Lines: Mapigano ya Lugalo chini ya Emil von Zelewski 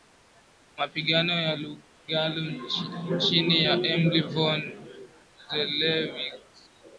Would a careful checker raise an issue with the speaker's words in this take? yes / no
no